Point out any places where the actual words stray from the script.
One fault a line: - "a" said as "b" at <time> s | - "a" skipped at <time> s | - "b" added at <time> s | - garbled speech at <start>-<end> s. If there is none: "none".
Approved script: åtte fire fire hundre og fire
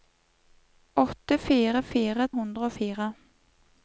none